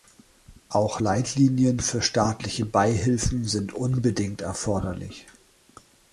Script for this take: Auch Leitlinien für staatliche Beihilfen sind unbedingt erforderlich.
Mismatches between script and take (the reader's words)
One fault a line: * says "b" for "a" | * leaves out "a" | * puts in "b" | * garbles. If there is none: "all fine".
all fine